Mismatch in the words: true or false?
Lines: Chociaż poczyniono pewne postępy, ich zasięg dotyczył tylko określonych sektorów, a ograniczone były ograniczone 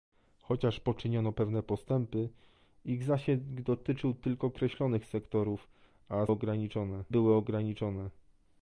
false